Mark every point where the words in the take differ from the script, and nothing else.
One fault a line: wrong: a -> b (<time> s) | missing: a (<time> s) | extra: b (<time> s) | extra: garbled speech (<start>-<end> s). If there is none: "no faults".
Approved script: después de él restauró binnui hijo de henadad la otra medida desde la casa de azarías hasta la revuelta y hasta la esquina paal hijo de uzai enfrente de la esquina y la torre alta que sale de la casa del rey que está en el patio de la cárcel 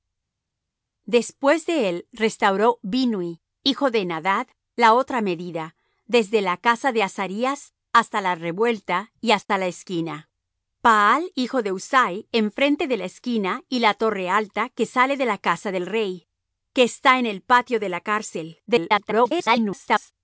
extra: garbled speech (18.7-20.1 s)